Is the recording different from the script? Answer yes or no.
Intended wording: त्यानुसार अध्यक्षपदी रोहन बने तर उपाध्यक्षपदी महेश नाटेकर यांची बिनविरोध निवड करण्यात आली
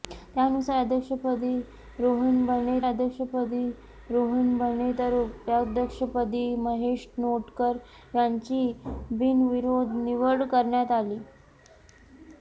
yes